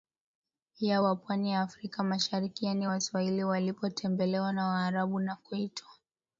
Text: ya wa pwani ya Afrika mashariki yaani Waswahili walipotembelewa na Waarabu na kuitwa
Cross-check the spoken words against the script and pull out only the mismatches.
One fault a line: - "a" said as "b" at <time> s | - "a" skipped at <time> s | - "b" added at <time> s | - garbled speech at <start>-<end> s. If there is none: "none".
none